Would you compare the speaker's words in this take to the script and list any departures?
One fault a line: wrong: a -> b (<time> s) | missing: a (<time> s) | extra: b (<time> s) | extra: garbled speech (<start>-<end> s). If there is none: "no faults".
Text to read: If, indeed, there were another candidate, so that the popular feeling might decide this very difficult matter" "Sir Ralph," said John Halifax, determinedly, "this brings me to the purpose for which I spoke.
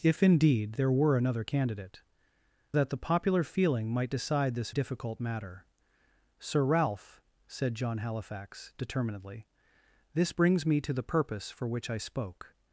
missing: so (2.0 s)
missing: very (4.7 s)